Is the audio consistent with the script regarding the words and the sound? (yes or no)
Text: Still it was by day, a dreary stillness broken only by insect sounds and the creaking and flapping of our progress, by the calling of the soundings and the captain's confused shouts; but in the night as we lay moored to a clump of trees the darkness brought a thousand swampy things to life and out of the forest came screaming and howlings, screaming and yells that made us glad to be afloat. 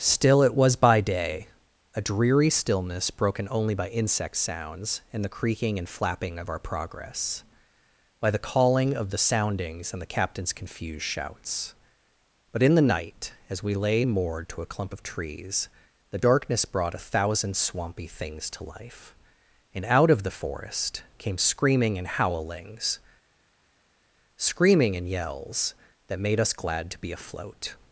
yes